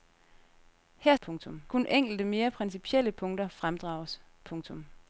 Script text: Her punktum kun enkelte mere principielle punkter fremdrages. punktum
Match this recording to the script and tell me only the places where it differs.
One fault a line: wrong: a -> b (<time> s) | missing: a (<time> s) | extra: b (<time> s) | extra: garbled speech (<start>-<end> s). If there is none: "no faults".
no faults